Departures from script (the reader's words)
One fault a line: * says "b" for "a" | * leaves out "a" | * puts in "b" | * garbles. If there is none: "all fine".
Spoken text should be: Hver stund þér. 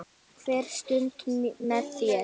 * puts in "með"